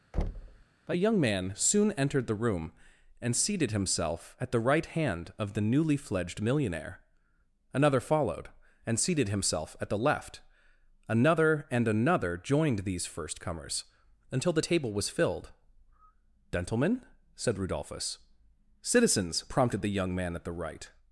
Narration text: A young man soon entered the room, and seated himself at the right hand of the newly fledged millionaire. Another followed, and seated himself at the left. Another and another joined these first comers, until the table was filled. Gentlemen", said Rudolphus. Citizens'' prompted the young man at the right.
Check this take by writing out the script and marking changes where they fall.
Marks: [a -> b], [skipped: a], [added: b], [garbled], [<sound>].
[thud] A young man soon entered the room, and seated himself at the right hand of the newly fledged millionaire. Another followed, and seated himself at the left. Another and another joined these first comers, until the table was filled. Gentlemen", said Rudolphus. Citizens'' prompted the young man at the right.